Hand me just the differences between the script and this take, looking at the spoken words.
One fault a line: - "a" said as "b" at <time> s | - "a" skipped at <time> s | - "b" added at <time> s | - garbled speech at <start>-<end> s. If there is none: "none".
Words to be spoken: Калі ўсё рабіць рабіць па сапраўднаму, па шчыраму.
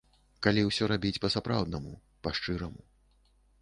- "рабіць" skipped at 1.2 s